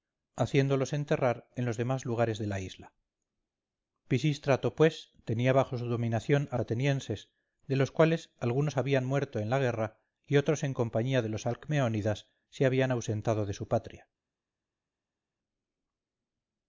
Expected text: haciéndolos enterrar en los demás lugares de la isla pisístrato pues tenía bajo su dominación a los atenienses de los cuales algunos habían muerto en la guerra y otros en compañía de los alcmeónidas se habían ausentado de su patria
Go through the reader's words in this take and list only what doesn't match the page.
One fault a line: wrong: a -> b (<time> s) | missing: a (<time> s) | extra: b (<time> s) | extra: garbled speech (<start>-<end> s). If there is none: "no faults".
missing: los (6.6 s)